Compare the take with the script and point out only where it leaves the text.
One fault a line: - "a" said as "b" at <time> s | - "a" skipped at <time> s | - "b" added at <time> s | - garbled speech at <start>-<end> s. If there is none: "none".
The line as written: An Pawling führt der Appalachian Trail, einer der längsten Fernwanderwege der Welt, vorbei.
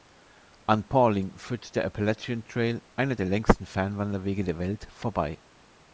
none